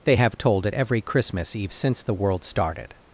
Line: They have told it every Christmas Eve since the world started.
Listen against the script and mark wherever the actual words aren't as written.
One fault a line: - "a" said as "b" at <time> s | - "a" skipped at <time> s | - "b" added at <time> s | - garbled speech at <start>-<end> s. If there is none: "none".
none